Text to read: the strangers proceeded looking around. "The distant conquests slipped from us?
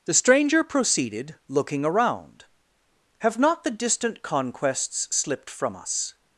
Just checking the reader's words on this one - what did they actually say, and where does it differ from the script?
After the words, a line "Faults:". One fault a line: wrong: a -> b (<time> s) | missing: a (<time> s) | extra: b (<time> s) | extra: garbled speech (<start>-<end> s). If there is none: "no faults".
the stranger proceeded looking around. "Have not the distant conquests slipped from us?
Faults:
wrong: strangers -> stranger (0.1 s)
extra: Have not (3.2 s)